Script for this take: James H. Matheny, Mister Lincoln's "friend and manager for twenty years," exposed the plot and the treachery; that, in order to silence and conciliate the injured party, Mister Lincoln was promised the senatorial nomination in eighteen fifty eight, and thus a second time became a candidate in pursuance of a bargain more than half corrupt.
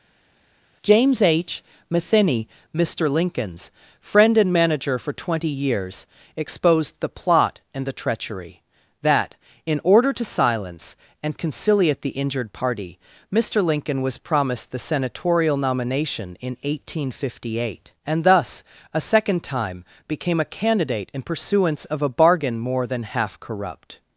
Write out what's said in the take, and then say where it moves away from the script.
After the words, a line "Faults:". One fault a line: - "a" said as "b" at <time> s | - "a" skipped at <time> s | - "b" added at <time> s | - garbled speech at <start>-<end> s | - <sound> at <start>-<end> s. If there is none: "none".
James H. Matheny, Mister Lincoln's "friend and manager for twenty years," exposed the plot and the treachery; that, in order to silence and conciliate the injured party, Mister Lincoln was promised the senatorial nomination in eighteen fifty eight, and thus a second time became a candidate in pursuance of a bargain more than half corrupt.
Faults:
none